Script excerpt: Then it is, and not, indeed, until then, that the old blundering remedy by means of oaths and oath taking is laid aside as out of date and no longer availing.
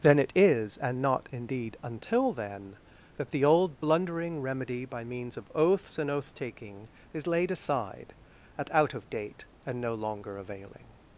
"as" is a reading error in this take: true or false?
true